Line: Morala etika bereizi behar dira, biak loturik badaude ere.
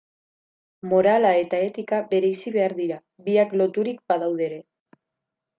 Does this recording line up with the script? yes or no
no